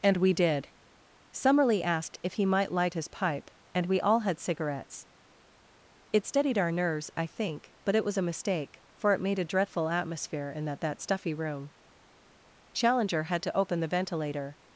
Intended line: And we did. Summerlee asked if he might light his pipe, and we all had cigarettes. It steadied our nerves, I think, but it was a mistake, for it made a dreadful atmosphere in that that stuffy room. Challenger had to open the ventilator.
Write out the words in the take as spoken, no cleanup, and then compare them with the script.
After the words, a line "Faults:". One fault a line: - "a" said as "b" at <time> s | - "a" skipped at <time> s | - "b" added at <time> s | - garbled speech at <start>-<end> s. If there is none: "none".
And we did. Summerlee asked if he might light his pipe, and we all had cigarettes. It steadied our nerves, I think, but it was a mistake, for it made a dreadful atmosphere in that that stuffy room. Challenger had to open the ventilator.
Faults:
none